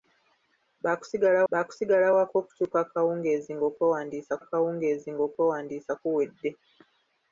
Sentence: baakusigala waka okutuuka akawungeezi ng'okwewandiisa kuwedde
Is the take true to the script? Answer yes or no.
no